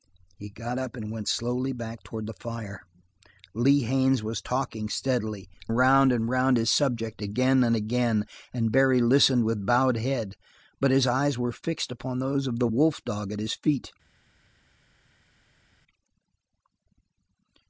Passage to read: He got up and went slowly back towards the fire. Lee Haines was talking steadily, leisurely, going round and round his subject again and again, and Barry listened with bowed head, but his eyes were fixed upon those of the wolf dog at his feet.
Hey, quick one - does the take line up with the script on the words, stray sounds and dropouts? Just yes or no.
no